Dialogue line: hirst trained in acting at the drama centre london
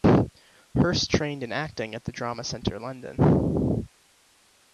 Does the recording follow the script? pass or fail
pass